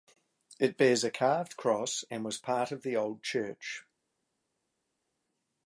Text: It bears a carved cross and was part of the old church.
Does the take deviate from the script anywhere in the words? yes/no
no